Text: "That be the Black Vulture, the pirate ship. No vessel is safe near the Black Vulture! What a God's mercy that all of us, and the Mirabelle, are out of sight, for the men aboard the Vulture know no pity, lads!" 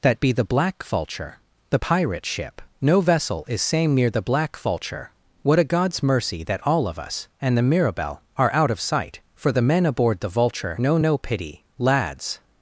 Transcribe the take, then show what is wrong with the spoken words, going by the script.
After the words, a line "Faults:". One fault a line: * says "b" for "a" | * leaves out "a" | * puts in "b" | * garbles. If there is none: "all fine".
"That be the Black Vulture, the pirate ship. No vessel is same near the Black Vulture! What a God's mercy that all of us, and the Mirabelle, are out of sight, for the men aboard the Vulture know no pity, lads!"
Faults:
* says "same" for "safe"